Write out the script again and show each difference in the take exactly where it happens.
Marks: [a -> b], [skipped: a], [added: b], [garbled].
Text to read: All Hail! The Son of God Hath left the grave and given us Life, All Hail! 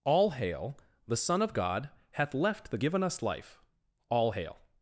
All Hail! The Son of God Hath left the [skipped: grave and] given us Life, All Hail!